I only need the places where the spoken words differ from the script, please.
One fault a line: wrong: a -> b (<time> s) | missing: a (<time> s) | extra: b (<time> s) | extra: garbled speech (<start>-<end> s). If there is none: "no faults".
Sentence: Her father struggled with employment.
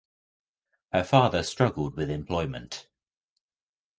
no faults